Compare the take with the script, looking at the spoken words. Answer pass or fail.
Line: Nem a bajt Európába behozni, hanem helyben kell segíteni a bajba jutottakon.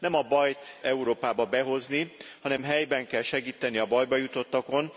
pass